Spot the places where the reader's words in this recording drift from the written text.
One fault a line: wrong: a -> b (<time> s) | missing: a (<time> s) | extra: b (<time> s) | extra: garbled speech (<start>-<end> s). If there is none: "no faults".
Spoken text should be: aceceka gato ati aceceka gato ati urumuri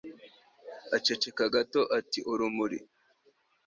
missing: aceceka gato ati (2.2 s)